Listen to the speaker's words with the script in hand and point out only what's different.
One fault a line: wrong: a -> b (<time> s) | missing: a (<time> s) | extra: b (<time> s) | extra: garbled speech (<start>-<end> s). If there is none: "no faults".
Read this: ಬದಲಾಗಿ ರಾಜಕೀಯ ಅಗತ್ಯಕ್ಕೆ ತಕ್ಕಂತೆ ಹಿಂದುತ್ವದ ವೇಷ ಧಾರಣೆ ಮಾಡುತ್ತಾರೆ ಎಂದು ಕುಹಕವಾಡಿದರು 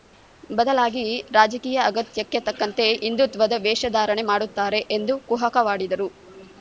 no faults